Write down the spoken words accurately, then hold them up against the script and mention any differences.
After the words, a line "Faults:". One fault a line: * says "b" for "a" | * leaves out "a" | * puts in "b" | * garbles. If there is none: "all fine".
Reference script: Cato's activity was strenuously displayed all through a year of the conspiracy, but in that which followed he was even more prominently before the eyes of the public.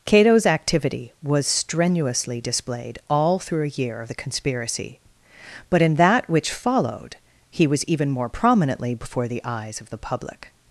Cato's activity was strenuously displayed all through a year of the conspiracy, but in that which followed he was even more prominently before the eyes of the public.
Faults:
all fine